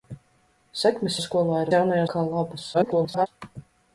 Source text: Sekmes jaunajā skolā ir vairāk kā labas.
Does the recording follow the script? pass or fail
fail